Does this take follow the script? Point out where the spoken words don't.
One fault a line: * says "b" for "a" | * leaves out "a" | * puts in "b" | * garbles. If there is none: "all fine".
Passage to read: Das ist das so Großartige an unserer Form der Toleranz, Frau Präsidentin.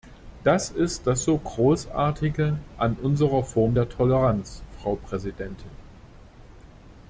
all fine